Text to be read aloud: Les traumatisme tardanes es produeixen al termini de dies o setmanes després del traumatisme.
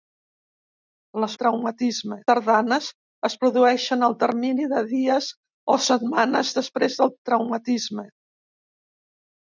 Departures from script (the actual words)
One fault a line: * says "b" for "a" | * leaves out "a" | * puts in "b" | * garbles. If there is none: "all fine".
all fine